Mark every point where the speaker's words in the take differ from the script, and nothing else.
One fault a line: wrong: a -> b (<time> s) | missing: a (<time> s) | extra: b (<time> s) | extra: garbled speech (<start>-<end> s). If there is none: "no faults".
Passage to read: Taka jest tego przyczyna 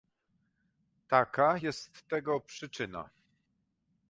no faults